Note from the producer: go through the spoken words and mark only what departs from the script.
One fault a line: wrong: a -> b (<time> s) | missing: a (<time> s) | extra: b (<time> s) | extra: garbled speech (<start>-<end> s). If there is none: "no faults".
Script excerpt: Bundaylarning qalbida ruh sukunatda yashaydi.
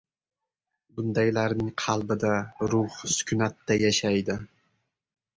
no faults